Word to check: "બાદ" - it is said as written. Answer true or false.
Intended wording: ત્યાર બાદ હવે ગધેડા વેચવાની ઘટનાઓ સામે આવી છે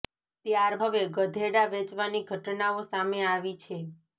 false